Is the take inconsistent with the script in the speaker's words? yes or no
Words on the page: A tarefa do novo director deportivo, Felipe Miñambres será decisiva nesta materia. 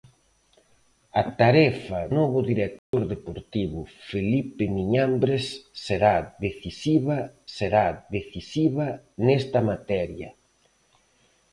yes